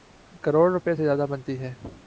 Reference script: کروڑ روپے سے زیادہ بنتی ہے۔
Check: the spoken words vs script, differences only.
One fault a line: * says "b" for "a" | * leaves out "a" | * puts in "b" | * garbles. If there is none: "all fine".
all fine